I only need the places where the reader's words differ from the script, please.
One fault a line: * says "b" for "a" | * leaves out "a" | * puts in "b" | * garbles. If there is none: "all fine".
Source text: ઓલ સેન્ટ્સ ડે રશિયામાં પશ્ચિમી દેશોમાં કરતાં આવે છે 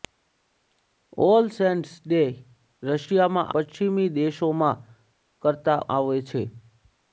all fine